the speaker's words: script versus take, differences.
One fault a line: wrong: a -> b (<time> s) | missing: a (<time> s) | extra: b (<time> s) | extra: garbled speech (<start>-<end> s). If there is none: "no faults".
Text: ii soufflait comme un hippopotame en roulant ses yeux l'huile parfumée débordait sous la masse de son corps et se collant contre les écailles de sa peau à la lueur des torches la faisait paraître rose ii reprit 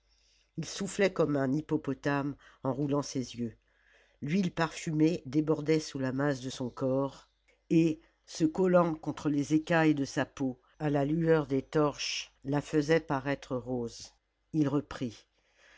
no faults